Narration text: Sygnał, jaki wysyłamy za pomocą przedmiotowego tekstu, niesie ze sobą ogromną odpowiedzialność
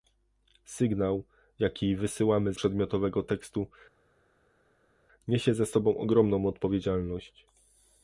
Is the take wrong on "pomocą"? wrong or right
wrong